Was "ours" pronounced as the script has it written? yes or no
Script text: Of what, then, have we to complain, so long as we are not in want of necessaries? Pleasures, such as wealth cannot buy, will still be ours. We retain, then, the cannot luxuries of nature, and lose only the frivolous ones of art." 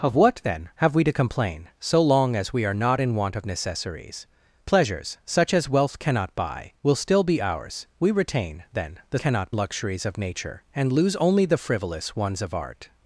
yes